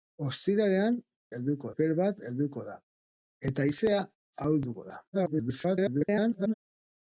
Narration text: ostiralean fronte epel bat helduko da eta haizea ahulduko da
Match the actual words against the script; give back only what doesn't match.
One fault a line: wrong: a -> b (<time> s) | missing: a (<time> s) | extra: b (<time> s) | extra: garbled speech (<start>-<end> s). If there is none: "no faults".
wrong: fronte -> helduko (1.4 s)
extra: garbled speech (5.1-6.5 s)